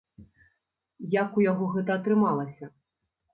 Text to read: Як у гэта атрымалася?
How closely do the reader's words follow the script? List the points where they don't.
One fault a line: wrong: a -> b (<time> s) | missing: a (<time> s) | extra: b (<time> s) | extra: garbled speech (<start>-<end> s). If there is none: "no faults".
extra: яго (1.5 s)